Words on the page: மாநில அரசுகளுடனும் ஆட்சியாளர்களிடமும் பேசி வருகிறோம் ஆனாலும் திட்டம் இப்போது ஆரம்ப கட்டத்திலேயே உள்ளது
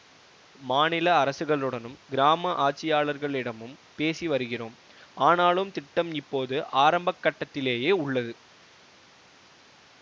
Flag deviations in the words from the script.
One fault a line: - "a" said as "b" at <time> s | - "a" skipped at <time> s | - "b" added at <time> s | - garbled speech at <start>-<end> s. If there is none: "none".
- "கிராம" added at 2.1 s